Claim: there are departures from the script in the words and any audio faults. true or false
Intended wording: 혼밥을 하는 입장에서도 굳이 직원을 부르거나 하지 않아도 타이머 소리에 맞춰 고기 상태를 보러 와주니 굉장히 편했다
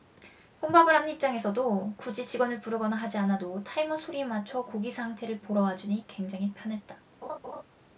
true